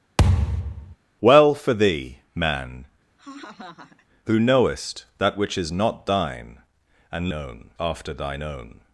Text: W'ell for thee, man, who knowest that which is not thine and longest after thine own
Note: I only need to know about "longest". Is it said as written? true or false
false